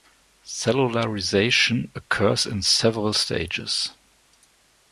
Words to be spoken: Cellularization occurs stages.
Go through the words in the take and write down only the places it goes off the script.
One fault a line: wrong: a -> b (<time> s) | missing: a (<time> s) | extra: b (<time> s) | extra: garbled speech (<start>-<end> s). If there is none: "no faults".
extra: in several (2.5 s)